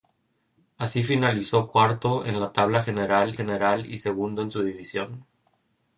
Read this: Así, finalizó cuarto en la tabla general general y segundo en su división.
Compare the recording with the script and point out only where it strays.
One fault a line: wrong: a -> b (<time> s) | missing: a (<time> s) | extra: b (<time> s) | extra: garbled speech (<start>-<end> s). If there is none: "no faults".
no faults